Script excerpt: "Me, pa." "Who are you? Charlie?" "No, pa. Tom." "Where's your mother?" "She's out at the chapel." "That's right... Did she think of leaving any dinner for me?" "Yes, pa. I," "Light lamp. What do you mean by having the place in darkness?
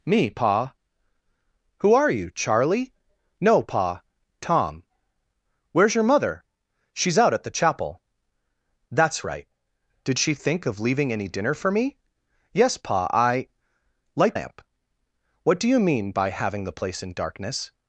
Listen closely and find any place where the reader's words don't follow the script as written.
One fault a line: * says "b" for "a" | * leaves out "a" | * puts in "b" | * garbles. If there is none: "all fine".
all fine